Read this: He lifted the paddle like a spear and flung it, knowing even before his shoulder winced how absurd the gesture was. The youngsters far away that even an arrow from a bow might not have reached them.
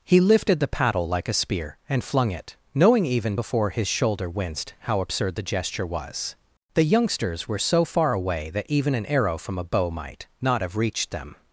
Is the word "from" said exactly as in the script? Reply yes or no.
yes